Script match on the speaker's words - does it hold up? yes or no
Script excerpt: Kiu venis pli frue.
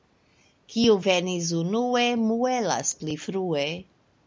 no